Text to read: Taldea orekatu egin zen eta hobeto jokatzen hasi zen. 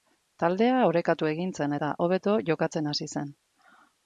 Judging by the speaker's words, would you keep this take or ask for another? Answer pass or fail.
pass